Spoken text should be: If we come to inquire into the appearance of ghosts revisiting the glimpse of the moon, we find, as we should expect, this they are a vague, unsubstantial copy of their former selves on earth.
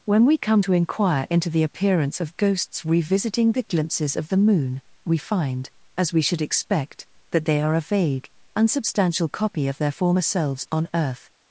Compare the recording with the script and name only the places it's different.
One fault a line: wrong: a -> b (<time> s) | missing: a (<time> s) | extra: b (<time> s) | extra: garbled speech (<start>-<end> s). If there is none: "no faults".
wrong: If -> When (0.1 s)
wrong: glimpse -> glimpses (3.6 s)
wrong: this -> that (7.3 s)